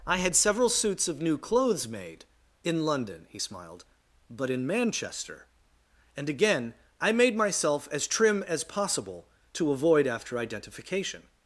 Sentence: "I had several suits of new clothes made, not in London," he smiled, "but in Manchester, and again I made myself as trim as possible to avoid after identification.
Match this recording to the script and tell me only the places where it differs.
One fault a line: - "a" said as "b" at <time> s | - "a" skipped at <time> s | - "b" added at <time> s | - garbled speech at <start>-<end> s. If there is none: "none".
- "not" skipped at 2.2 s